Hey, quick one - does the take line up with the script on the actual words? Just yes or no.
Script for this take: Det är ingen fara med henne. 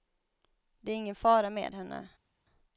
yes